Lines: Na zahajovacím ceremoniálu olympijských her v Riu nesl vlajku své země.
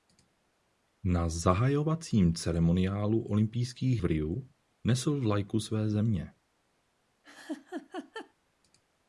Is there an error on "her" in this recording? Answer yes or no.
yes